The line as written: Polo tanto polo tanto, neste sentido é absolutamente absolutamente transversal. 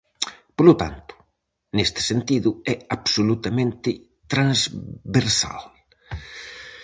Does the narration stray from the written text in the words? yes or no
yes